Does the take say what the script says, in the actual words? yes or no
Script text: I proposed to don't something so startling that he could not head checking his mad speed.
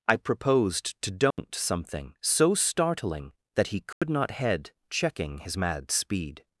yes